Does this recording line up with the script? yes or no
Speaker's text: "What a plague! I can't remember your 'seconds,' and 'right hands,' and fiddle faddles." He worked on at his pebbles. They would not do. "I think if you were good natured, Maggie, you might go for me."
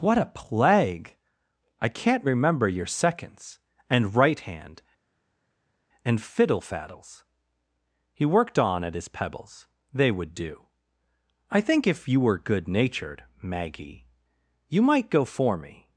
no